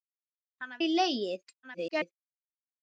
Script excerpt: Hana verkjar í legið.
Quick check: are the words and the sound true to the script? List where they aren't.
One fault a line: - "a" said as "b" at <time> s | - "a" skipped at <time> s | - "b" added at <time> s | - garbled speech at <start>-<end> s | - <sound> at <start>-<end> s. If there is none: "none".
- "verkjar" skipped at 0.8 s
- garbled speech at 1.6-2.2 s